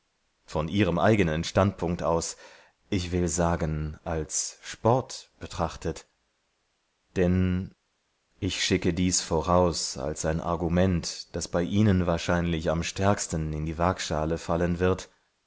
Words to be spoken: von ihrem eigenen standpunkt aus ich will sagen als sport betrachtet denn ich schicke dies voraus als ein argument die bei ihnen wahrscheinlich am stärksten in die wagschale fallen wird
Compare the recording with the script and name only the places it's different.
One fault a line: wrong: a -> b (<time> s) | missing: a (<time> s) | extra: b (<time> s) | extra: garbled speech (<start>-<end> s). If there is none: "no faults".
wrong: die -> das (11.3 s)